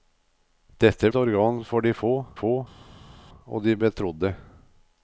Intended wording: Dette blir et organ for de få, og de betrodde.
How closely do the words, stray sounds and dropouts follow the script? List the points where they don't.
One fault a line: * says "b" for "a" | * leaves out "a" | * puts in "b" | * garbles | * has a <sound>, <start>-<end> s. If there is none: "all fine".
* leaves out "blir"
* puts in "få"